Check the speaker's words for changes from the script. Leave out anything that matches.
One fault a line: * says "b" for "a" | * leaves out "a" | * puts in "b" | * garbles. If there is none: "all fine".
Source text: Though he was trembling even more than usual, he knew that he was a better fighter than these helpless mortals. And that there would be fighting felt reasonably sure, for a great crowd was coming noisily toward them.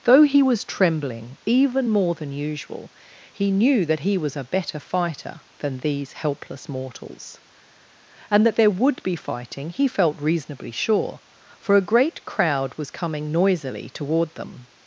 * puts in "he"